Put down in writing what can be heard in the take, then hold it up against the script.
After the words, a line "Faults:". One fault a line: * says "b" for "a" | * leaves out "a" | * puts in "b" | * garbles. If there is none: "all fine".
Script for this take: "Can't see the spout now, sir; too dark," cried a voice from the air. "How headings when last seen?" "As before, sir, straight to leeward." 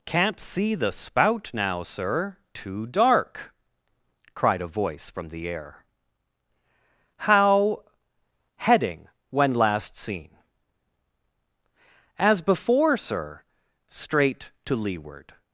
"Can't see the spout now, sir; too dark," cried a voice from the air. "How heading when last seen?" "As before, sir, straight to leeward."
Faults:
* says "heading" for "headings"